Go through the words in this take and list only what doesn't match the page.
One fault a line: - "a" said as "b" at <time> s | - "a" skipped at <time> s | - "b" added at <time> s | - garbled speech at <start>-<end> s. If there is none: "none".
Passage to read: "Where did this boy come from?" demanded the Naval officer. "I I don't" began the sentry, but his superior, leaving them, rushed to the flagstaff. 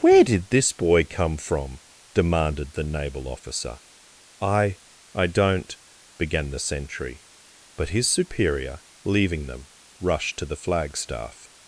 none